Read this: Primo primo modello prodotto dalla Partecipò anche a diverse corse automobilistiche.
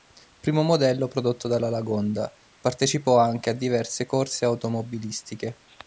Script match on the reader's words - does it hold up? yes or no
no